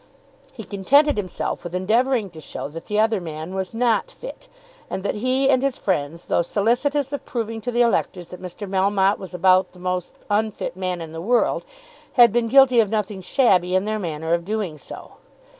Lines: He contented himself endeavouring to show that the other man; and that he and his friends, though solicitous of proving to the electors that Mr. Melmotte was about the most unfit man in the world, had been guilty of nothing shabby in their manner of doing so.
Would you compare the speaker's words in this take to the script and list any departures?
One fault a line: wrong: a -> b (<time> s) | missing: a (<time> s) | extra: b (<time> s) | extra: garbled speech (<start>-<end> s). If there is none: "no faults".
extra: with (1.6 s)
extra: was not fit (3.5 s)